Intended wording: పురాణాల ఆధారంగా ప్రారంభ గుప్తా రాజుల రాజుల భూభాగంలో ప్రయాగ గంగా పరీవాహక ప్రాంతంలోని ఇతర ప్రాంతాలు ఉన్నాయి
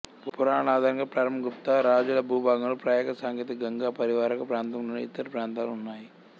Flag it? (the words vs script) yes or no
yes